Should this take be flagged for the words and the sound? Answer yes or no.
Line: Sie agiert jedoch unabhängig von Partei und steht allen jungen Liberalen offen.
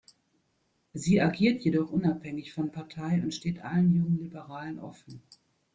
no